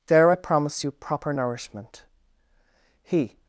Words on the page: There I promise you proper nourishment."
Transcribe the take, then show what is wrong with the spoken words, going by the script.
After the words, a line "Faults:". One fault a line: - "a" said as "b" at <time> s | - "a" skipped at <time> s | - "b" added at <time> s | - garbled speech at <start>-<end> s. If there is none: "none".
There I promise you proper nourishment." He
Faults:
- "He" added at 3.0 s